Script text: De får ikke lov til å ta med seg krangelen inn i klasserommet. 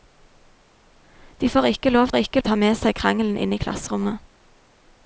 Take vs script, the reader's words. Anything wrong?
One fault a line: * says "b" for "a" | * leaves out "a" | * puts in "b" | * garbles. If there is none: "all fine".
* says "ikke" for "til"